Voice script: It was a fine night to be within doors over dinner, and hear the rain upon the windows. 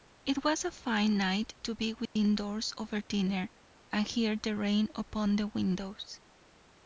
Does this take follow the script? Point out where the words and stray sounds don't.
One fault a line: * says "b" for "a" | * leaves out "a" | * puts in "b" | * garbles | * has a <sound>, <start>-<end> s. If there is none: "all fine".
* has a dropout, 2.1-2.2 s